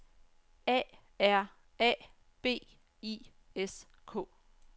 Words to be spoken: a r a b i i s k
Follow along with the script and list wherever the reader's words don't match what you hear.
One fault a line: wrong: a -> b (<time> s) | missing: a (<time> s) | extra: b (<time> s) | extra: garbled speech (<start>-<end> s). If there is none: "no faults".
missing: i (3.2 s)